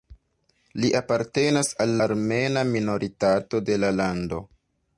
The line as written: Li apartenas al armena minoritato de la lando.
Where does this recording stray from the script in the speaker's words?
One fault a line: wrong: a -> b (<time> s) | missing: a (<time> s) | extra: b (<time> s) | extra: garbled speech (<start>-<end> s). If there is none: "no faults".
no faults